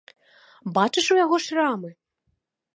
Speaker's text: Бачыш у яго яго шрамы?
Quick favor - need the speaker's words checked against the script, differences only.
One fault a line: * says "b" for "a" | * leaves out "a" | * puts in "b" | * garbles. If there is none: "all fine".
* leaves out "яго"